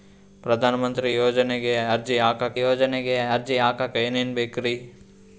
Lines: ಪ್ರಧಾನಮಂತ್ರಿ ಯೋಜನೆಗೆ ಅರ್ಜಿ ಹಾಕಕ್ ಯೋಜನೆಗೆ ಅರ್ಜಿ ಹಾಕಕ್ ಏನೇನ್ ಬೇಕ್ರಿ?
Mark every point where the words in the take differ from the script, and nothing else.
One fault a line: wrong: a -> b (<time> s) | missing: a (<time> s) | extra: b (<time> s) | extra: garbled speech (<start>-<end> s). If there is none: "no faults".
no faults